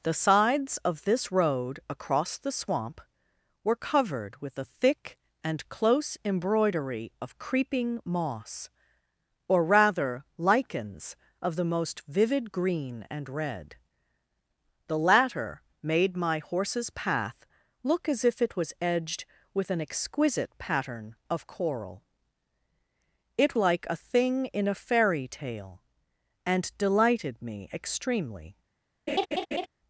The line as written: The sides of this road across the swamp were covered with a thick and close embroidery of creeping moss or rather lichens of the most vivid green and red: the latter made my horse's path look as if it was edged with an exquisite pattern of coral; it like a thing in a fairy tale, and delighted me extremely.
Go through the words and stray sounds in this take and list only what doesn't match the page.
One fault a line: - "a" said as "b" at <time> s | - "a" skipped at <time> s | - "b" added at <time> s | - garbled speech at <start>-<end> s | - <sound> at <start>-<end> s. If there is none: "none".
- laugh at 29.1-29.7 s